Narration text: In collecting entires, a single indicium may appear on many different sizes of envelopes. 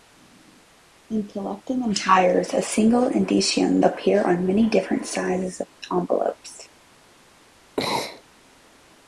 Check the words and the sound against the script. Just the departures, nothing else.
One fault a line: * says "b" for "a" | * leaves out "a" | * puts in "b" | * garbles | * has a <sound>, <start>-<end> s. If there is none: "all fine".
* leaves out "may"
* has a sneeze, 7.8-8.2 s